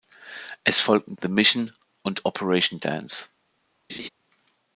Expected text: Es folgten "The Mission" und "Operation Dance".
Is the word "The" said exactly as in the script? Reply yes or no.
yes